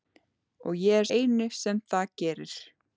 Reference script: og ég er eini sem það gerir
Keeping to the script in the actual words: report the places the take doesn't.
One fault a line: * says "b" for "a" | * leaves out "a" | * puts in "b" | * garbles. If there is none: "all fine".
all fine